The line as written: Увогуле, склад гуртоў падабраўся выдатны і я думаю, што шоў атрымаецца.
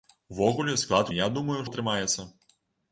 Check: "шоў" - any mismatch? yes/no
yes